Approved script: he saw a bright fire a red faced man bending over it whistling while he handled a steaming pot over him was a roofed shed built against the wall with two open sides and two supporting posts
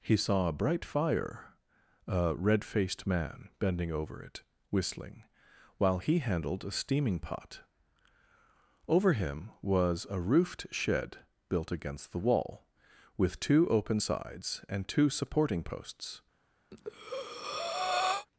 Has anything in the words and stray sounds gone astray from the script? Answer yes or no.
yes